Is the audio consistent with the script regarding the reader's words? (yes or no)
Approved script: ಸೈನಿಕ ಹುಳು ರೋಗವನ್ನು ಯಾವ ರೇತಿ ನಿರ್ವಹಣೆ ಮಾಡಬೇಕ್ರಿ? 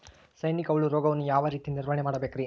yes